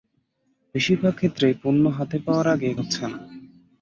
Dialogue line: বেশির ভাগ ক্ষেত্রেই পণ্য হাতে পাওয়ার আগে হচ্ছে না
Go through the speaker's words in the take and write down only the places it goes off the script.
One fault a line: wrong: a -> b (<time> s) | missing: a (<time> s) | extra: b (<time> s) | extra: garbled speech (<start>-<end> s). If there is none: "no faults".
no faults